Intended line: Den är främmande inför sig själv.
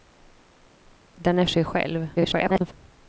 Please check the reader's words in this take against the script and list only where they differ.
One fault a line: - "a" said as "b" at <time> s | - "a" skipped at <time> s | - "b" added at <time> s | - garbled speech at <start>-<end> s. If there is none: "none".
- "främmande inför" skipped at 1.4 s
- garbled speech at 2.2-2.7 s